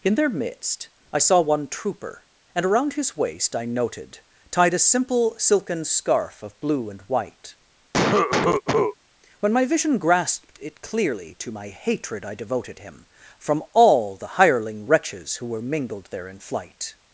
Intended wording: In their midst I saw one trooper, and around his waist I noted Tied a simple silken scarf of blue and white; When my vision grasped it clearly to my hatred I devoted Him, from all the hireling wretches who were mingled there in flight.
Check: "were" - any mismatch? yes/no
no